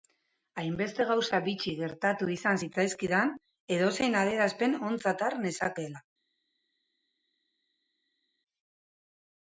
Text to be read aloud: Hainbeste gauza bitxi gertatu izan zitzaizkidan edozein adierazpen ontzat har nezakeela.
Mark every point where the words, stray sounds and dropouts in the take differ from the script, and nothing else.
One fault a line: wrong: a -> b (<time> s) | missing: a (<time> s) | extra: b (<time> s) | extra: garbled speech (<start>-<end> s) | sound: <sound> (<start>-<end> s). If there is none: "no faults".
no faults